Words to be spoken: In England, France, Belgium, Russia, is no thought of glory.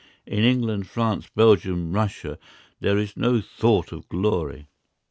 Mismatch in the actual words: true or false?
true